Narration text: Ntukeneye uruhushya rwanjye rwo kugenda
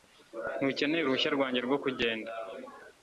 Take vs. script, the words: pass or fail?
pass